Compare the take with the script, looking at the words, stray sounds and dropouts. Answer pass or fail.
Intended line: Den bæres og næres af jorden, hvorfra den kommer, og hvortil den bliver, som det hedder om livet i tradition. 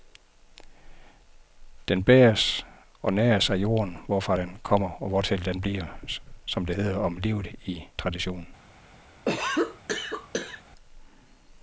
fail